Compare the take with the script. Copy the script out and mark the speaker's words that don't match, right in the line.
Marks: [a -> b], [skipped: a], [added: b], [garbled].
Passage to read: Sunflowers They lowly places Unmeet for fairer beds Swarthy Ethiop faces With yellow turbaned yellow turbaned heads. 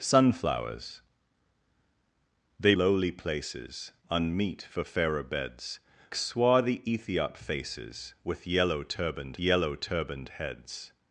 Sunflowers They lowly places Unmeet for fairer beds Swarthy Ethiop faces With yellow turbaned yellow turbaned heads.